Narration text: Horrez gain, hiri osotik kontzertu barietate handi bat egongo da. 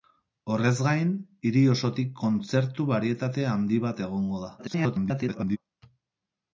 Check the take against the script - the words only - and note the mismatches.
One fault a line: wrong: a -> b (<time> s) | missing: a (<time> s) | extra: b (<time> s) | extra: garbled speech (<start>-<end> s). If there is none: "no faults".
extra: garbled speech (4.6-5.6 s)